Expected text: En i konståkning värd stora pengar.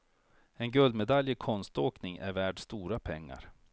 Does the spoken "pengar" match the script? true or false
true